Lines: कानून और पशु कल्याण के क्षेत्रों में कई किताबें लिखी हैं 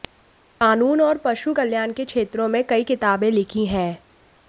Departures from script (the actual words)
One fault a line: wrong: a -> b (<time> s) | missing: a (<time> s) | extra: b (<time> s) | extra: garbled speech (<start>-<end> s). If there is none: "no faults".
no faults